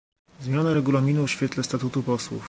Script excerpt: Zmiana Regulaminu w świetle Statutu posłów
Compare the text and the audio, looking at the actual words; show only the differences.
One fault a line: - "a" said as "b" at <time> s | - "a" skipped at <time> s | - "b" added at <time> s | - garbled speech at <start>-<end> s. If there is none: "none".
none